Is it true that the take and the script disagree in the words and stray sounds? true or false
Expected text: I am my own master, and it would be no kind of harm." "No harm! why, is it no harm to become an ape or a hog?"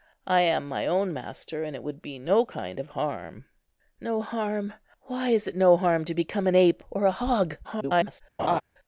true